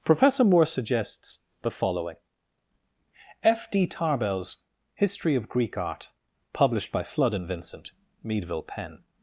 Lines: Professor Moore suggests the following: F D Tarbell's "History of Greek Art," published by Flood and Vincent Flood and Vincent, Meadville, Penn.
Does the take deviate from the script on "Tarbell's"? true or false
false